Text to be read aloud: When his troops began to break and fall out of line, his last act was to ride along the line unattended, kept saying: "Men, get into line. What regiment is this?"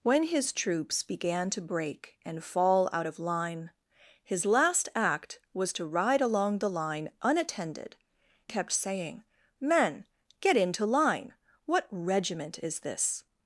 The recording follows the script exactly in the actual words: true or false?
true